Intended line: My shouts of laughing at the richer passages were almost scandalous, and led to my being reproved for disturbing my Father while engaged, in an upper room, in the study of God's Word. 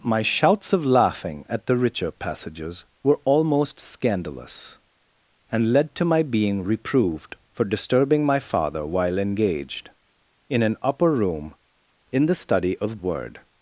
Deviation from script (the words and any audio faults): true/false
true